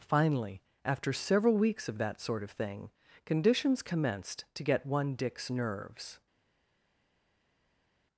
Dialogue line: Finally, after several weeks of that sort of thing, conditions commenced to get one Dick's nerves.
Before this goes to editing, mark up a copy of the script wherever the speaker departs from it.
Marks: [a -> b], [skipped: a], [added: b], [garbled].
Finally, after several weeks of that sort of thing, conditions commenced to get one Dick's nerves.